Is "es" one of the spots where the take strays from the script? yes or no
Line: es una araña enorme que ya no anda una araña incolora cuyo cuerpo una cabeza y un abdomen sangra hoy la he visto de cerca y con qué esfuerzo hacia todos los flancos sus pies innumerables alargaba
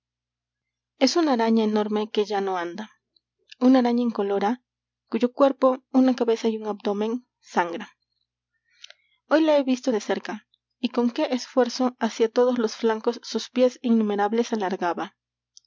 no